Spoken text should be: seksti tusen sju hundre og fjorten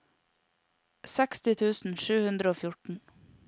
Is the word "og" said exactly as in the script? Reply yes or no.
yes